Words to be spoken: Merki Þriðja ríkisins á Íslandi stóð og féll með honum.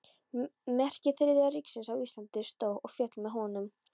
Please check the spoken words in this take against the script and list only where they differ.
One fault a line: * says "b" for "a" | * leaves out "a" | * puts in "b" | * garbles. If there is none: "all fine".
all fine